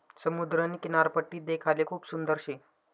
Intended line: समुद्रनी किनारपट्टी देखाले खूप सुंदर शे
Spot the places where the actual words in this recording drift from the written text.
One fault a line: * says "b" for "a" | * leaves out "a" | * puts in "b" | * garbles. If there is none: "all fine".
all fine